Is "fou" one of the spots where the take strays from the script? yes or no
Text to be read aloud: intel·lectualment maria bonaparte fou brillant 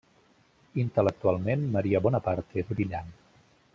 yes